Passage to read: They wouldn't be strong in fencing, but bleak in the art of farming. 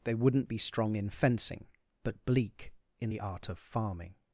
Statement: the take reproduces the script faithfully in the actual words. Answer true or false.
true